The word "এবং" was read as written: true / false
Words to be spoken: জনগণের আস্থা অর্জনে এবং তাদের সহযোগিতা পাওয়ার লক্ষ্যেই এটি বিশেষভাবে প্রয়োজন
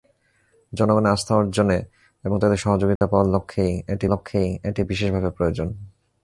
true